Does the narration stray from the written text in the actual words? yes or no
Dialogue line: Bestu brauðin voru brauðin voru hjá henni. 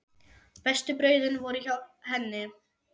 yes